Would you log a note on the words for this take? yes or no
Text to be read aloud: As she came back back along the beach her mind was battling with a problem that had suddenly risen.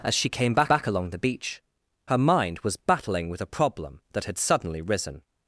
no